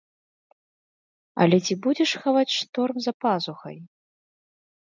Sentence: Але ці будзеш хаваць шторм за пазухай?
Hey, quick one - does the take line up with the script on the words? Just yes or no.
yes